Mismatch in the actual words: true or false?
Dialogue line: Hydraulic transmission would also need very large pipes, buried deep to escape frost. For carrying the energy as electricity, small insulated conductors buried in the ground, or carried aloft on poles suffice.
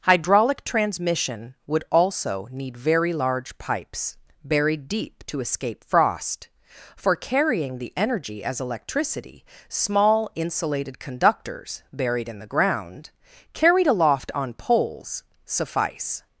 true